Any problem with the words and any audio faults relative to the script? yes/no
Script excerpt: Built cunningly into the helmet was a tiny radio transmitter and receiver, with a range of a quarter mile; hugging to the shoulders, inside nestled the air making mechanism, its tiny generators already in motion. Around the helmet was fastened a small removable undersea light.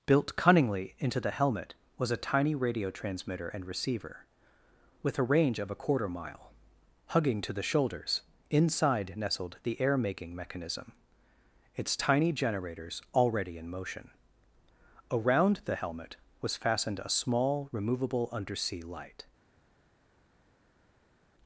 no